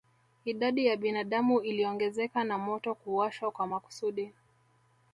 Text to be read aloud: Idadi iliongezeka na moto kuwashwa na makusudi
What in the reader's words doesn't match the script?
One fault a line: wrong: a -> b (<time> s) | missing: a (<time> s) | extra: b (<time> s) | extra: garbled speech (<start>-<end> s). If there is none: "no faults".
extra: ya binadamu (0.8 s)
wrong: na -> kwa (3.5 s)